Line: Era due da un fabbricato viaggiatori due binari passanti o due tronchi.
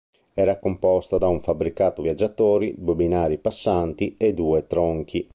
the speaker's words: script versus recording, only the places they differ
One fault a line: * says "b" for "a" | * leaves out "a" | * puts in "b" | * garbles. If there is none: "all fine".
* says "composta" for "due"
* says "e" for "o"